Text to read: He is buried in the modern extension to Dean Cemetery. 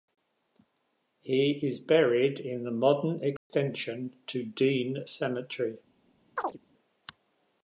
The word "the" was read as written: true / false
true